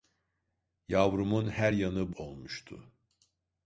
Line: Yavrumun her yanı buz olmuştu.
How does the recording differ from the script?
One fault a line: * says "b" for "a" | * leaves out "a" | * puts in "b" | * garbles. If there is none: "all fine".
* leaves out "buz"